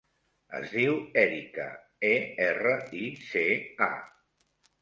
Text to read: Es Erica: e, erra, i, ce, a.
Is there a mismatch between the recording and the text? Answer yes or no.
yes